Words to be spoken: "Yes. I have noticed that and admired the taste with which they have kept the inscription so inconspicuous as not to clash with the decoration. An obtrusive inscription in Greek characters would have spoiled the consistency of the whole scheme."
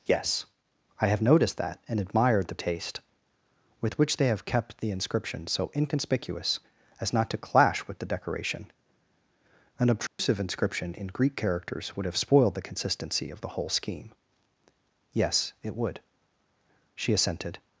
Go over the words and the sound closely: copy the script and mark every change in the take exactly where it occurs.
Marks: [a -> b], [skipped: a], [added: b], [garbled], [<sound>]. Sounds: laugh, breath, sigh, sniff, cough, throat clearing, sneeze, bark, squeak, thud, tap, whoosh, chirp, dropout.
"Yes. I have noticed that and admired the taste with which they have kept the inscription so inconspicuous as not to clash with the decoration. An obtrusive [dropout] inscription in Greek characters would have spoiled the consistency of the whole scheme." [added: Yes it would She assented]